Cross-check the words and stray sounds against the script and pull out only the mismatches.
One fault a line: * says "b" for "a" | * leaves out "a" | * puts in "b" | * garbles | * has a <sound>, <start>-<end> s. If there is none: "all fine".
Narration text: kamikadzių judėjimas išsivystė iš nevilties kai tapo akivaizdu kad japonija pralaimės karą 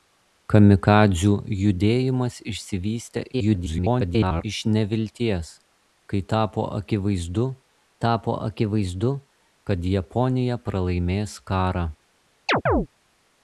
* garbles
* puts in "tapo akivaizdu"
* has a chirp, 12.5-12.9 s